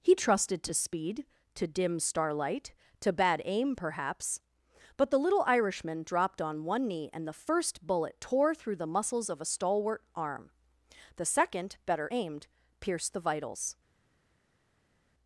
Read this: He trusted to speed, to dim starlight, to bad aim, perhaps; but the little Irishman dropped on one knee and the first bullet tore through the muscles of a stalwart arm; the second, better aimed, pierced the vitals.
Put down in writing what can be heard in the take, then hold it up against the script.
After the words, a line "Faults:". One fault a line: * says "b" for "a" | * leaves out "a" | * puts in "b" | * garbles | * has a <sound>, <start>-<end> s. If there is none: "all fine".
He trusted to speed, to dim starlight, to bad aim, perhaps; but the little Irishman dropped on one knee and the first bullet tore through the muscles of a stalwart arm; the second, better aimed, pierced the vitals.
Faults:
all fine